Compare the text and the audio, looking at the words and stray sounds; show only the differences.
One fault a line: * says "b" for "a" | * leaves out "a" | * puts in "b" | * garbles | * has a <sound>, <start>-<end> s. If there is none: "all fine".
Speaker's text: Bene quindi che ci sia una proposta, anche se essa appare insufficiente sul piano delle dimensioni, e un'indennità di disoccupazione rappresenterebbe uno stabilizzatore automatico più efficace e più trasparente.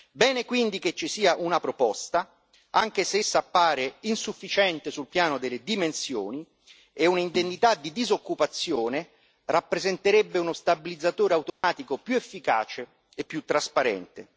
* has a dropout, 11.5-11.6 s